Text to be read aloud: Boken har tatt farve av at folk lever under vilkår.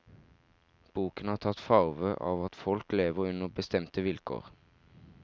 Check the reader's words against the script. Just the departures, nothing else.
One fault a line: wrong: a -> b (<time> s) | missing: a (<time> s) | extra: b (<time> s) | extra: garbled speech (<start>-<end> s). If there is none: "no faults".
extra: bestemte (3.6 s)